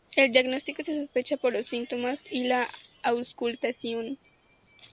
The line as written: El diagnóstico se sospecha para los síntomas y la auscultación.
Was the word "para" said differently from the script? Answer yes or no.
yes